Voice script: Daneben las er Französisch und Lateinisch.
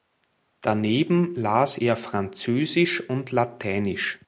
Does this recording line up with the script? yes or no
yes